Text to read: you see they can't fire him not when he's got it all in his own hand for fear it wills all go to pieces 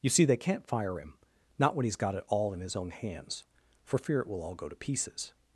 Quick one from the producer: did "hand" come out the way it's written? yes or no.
no